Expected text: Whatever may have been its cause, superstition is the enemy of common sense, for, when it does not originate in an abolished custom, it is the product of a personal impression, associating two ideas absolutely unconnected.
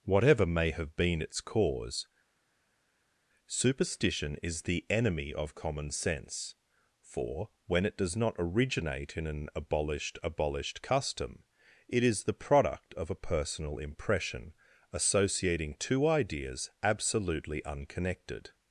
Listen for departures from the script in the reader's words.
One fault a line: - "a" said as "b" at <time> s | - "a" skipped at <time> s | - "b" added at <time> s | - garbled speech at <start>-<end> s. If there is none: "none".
- "abolished" added at 10.2 s